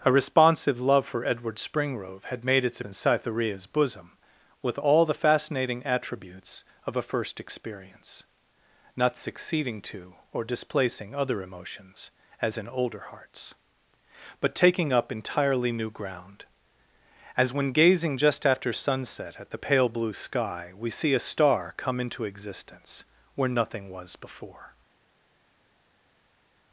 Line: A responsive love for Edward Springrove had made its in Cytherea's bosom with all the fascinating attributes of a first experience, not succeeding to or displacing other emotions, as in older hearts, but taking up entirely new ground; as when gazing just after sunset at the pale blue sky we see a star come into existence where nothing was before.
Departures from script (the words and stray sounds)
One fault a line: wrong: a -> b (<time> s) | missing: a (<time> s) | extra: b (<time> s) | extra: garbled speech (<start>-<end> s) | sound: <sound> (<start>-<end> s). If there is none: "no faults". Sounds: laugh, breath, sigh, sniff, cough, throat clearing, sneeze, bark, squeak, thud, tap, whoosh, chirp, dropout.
no faults